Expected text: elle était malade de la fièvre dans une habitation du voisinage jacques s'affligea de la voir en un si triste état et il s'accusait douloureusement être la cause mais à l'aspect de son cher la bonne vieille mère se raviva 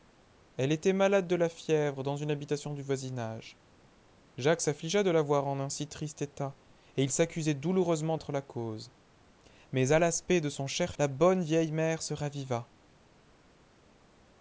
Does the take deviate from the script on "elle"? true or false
false